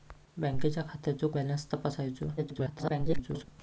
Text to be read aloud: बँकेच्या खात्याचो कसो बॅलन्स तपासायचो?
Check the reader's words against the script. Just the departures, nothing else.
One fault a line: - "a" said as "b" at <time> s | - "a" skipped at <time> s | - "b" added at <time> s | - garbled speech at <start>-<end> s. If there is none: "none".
- "कसो" skipped at 1.3 s
- garbled speech at 2.4-3.5 s